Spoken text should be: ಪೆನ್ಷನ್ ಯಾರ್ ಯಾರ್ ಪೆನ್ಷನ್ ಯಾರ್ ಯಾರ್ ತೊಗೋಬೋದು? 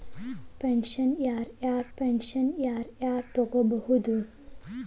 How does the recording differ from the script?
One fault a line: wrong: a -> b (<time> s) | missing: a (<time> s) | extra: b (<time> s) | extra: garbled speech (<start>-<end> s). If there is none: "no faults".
no faults